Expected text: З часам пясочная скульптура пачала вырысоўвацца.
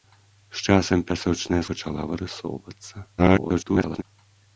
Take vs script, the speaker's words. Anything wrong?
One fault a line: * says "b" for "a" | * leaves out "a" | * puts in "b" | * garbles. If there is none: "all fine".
* leaves out "скульптура"
* garbles